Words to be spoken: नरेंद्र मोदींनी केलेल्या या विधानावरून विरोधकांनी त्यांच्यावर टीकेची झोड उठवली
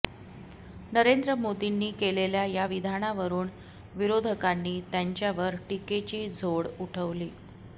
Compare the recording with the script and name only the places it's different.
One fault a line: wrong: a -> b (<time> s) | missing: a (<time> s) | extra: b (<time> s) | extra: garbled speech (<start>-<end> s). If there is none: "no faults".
no faults